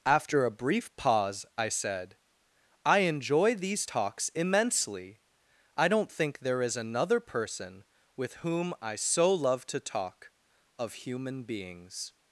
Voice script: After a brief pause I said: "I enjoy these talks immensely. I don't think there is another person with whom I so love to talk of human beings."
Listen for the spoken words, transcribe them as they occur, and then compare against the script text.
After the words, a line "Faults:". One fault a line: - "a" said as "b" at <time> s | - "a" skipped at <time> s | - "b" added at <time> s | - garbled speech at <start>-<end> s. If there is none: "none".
After a brief pause I said: "I enjoy these talks immensely. I don't think there is another person with whom I so love to talk of human beings."
Faults:
none